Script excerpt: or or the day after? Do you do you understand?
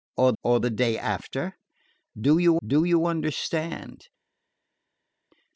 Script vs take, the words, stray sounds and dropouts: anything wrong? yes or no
no